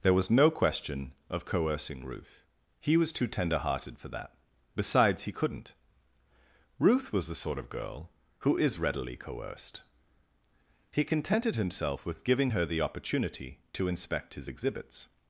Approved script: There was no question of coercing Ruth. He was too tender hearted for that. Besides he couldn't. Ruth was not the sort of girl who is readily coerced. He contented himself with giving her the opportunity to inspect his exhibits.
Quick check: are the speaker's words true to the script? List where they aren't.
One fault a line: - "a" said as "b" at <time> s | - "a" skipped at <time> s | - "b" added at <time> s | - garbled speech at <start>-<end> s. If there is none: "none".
- "not" skipped at 7.3 s